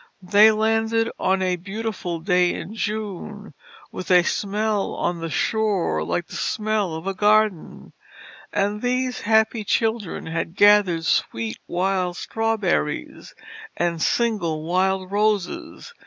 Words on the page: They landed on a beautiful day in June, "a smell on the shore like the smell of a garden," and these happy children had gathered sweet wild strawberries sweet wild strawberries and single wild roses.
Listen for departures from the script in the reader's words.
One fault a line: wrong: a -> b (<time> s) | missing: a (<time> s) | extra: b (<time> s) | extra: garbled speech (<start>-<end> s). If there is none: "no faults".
extra: with (3.9 s)
missing: sweet wild strawberries (13.3 s)